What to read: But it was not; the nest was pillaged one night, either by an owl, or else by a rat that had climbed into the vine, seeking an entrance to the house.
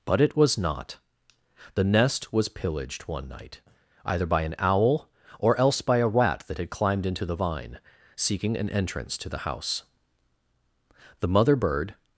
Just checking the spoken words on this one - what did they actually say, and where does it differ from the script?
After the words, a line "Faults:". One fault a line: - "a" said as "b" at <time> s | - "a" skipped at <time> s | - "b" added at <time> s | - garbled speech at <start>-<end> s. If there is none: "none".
But it was not; the nest was pillaged one night, either by an owl, or else by a rat that had climbed into the vine, seeking an entrance to the house. The mother bird
Faults:
- "The mother bird" added at 11.2 s